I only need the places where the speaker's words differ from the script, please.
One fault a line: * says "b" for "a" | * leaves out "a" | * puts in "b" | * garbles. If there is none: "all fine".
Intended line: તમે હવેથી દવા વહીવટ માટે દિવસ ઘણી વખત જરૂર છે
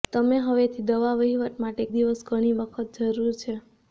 all fine